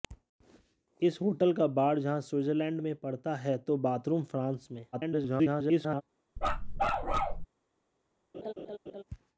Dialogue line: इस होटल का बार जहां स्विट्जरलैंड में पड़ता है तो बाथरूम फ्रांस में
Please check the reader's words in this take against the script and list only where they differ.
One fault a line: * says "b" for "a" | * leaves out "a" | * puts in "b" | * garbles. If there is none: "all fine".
* garbles